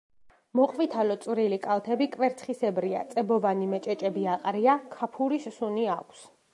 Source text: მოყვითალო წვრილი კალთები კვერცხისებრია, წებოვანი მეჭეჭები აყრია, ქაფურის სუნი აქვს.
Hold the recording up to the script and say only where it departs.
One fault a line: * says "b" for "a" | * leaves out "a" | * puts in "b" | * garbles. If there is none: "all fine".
all fine